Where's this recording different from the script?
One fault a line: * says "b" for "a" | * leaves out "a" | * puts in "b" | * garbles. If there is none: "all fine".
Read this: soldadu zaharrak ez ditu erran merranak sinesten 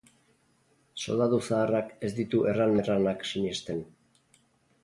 all fine